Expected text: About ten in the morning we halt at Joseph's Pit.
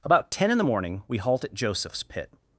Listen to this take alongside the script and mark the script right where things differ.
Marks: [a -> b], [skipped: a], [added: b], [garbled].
About ten in the morning we halt at Joseph's Pit.